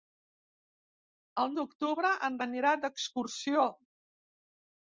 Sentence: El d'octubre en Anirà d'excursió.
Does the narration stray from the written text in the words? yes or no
no